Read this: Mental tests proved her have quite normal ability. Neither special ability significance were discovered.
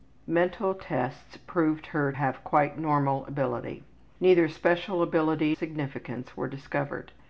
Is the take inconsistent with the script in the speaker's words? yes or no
no